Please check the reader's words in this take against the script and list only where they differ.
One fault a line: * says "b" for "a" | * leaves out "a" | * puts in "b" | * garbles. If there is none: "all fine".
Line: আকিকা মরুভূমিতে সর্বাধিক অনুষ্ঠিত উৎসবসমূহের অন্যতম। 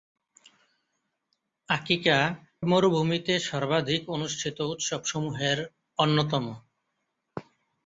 all fine